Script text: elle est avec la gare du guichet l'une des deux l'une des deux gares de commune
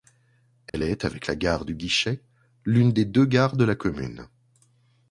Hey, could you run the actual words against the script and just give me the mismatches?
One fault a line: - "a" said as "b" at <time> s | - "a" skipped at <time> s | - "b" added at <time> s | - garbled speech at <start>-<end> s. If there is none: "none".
- "l'une des deux" skipped at 3.3 s
- "la" added at 3.6 s